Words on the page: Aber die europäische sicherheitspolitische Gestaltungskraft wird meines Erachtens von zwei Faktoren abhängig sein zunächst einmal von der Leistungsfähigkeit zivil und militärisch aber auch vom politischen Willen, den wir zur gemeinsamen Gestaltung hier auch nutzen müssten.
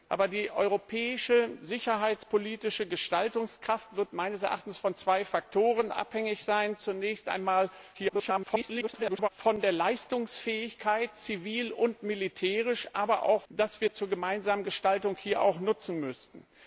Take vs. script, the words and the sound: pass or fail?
fail